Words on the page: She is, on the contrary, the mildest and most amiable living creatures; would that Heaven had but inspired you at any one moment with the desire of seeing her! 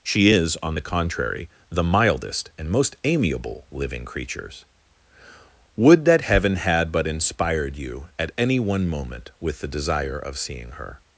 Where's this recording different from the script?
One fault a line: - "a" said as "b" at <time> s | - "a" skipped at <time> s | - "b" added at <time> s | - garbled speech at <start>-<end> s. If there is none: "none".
none